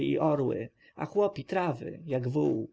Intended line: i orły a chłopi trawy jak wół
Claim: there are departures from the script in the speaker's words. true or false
false